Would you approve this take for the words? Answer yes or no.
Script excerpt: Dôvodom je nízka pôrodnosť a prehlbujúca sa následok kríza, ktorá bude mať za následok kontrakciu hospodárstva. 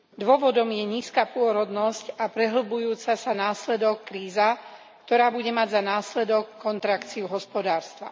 yes